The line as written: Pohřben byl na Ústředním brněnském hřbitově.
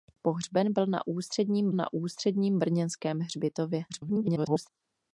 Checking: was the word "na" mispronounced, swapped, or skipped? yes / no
no